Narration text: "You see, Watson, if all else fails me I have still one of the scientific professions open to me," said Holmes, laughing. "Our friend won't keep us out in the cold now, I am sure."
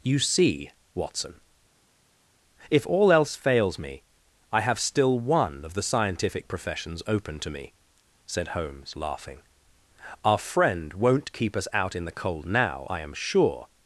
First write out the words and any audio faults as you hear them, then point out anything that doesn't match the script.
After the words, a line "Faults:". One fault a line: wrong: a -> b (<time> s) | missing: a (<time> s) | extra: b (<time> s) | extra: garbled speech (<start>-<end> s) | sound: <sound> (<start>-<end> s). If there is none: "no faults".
"You see, Watson, if all else fails me I have still one of the scientific professions open to me," said Holmes, laughing. "Our friend won't keep us out in the cold now, I am sure."
Faults:
no faults